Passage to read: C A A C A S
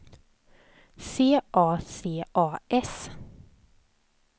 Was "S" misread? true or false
false